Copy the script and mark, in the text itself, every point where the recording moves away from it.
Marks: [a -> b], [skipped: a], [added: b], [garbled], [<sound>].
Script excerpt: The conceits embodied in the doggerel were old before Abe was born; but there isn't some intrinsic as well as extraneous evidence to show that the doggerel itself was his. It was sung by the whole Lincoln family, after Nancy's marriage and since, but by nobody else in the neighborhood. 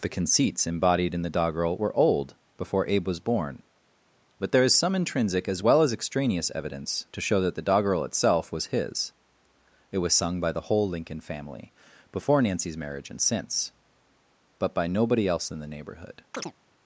The conceits embodied in the doggerel were old before Abe was born; but there [isn't -> is] some intrinsic as well as extraneous evidence to show that the doggerel itself was his. It was sung by the whole Lincoln family, [after -> before] Nancy's marriage and since, but by nobody else in the neighborhood. [chirp]